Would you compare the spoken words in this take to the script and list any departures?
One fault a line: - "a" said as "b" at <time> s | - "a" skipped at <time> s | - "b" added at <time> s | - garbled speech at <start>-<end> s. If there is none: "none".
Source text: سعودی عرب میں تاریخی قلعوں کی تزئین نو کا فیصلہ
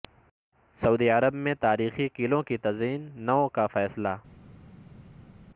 none